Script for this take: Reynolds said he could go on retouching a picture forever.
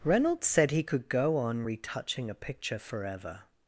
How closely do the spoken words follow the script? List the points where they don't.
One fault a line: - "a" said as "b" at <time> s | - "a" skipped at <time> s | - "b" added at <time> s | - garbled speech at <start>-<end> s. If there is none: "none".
none